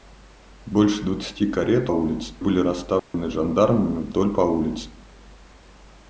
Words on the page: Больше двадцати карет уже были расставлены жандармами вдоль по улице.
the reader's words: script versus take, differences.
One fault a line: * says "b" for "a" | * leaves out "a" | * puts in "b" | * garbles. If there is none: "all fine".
* says "улице" for "уже"